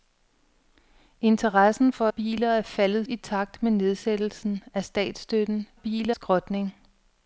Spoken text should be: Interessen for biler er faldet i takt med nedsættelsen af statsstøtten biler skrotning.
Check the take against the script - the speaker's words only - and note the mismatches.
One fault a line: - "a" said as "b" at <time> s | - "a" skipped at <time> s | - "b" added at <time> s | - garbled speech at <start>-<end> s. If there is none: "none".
none